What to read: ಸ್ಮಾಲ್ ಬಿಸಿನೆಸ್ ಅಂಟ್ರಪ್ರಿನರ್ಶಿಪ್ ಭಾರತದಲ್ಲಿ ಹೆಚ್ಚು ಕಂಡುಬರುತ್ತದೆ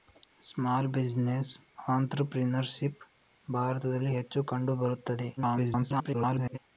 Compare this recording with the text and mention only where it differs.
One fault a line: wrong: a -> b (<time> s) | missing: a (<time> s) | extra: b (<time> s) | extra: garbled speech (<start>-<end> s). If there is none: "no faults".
extra: garbled speech (5.4-6.6 s)